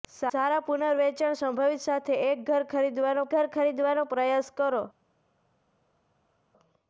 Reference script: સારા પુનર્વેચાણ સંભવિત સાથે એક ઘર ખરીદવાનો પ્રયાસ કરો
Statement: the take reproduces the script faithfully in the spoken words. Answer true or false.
false